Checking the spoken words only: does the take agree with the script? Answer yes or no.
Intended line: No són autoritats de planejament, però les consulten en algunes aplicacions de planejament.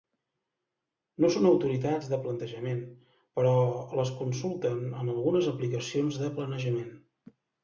yes